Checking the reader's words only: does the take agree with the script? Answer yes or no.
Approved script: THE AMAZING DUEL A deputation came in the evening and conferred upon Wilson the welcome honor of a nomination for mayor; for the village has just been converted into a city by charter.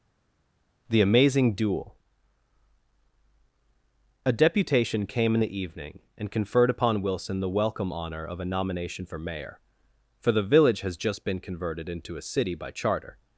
yes